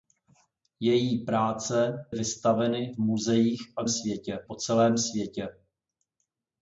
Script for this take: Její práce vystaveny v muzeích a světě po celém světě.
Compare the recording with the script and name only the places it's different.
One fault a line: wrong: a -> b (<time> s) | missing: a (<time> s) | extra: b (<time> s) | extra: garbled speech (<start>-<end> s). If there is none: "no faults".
no faults